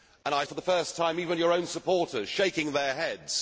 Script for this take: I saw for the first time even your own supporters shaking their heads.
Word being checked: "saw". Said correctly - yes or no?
no